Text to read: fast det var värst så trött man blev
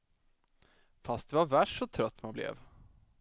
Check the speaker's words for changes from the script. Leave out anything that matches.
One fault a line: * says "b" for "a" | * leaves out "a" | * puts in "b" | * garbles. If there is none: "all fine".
all fine